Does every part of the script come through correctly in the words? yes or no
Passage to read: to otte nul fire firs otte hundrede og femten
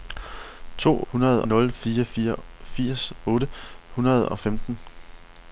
no